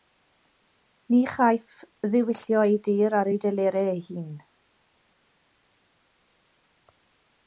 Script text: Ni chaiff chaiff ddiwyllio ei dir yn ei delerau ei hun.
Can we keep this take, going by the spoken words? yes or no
no